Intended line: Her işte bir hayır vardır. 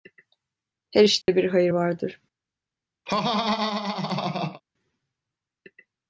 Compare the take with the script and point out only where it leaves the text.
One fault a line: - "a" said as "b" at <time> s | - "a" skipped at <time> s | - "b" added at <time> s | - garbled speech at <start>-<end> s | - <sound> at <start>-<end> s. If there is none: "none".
- dropout at 1.2-1.3 s
- laugh at 3.1-4.6 s